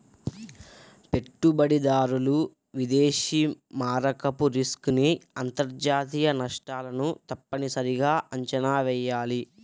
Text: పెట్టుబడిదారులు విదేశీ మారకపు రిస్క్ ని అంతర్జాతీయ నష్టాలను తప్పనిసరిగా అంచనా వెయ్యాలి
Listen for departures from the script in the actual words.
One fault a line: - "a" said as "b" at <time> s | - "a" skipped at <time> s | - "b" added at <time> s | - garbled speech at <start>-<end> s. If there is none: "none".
none